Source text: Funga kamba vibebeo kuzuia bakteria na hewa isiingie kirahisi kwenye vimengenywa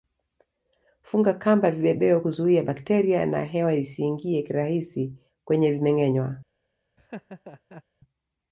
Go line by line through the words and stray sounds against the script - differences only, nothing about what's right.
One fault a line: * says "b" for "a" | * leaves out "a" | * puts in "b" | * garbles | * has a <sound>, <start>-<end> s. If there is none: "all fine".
* has a laugh, 7.0-7.8 s